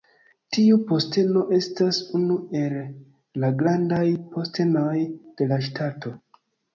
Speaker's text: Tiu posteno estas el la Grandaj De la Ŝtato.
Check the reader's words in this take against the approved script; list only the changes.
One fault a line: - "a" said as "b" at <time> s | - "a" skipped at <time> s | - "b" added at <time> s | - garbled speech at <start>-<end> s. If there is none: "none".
- "unu" added at 2.2 s
- "Postenoj" added at 4.4 s